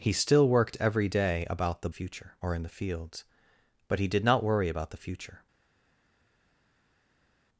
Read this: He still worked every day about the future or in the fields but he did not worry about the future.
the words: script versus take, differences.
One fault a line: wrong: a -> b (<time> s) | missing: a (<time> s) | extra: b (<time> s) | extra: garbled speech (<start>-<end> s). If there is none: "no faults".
no faults